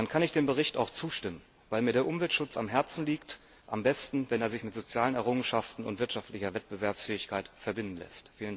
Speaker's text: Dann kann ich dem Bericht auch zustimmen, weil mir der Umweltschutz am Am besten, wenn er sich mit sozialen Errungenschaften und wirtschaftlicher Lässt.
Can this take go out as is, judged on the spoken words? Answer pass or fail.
fail